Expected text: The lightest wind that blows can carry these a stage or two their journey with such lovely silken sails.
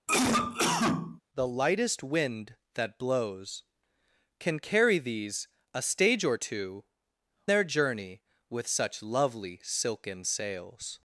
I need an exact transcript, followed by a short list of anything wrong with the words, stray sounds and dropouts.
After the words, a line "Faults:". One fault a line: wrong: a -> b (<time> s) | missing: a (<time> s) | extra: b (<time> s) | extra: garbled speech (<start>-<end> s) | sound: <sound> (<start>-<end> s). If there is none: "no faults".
The lightest wind that blows can carry these a stage or two their journey with such lovely silken sails.
Faults:
sound: cough (0.1-1.2 s)